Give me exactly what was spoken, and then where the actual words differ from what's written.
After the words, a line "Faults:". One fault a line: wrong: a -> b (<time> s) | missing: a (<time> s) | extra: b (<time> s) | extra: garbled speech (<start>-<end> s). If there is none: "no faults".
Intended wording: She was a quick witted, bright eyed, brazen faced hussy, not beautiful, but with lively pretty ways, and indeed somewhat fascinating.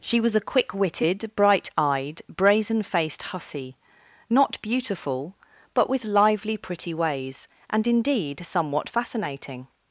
She was a quick witted, bright eyed, brazen faced hussy, not beautiful, but with lively pretty ways, and indeed somewhat fascinating.
Faults:
no faults